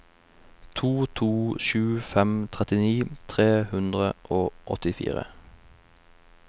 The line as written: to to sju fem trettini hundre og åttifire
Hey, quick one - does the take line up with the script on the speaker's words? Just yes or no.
no